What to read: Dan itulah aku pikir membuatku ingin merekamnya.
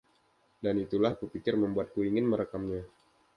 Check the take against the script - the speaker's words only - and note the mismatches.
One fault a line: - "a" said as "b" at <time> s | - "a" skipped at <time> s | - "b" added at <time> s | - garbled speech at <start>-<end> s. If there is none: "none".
none